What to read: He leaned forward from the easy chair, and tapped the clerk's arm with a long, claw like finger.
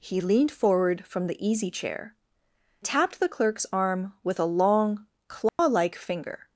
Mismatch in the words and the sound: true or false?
true